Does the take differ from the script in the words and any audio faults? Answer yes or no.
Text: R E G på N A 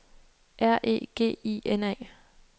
yes